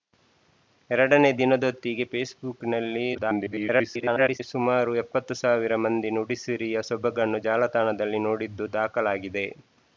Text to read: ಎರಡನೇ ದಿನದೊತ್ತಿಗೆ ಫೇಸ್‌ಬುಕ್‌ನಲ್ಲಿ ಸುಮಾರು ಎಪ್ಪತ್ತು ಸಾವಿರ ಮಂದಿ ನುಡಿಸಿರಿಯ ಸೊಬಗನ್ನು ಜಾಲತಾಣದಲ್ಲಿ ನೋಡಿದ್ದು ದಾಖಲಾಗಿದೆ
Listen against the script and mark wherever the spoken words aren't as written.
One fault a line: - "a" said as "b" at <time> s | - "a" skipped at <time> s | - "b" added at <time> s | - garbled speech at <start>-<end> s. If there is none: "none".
- garbled speech at 3.1-4.4 s